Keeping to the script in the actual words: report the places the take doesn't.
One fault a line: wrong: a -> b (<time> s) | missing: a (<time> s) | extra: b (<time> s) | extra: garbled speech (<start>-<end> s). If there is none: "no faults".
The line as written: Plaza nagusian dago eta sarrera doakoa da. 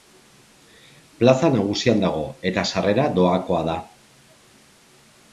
no faults